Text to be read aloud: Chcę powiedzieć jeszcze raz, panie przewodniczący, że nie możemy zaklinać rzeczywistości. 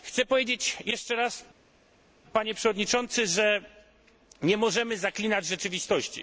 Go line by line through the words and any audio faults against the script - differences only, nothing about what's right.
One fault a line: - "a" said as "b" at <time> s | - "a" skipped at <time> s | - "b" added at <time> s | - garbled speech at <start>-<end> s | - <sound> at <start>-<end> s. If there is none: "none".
none